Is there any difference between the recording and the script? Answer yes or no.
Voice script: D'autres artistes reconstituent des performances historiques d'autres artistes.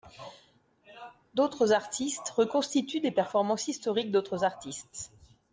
no